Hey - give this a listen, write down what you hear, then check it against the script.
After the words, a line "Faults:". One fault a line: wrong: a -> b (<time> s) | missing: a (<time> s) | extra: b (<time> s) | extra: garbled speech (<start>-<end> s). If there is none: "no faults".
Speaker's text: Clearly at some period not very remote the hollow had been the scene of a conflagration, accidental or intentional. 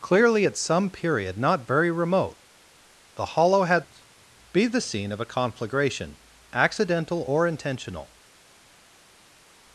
Clearly at some period not very remote the hollow had be the scene of a conflagration, accidental or intentional.
Faults:
wrong: been -> be (4.5 s)